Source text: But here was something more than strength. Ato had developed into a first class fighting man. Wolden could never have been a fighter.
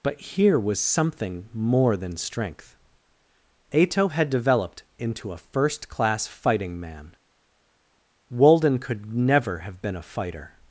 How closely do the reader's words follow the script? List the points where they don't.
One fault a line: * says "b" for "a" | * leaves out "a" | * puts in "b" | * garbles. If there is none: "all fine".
all fine